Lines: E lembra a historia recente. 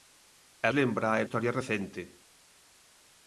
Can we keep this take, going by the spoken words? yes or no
yes